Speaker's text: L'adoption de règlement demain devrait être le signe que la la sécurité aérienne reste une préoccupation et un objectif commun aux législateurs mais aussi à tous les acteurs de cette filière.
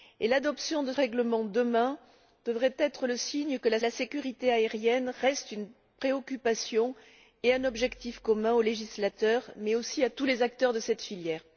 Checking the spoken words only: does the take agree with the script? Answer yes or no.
yes